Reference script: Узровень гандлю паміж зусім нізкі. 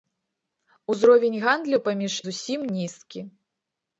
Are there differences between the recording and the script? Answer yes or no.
no